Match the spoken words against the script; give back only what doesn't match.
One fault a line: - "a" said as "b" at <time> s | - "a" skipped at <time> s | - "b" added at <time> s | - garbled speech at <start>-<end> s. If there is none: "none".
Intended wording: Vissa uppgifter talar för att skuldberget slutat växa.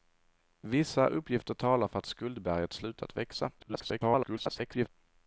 - garbled speech at 3.6-4.9 s